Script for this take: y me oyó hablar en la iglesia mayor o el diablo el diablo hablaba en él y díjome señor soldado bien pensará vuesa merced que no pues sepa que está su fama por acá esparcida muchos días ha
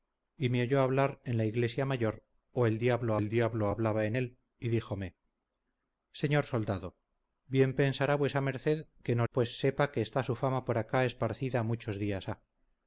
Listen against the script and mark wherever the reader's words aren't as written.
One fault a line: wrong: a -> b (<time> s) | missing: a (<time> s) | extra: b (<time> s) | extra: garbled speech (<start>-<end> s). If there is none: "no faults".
no faults